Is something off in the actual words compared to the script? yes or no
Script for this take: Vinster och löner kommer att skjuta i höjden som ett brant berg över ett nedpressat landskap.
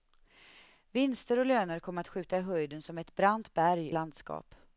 yes